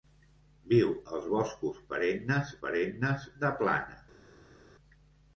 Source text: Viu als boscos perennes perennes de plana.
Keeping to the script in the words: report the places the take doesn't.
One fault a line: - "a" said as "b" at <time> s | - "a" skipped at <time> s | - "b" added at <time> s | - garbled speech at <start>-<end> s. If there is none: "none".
none